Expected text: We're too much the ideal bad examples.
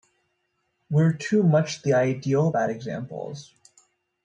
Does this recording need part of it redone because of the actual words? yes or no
no